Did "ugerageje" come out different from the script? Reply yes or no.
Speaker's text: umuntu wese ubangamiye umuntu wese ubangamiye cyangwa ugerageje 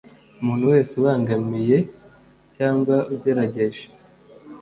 no